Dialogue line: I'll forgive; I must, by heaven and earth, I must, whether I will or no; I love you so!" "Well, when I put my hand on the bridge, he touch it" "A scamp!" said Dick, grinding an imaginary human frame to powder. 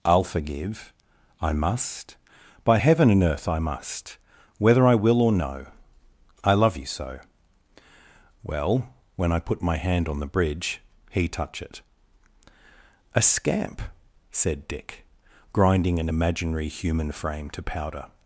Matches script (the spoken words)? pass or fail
pass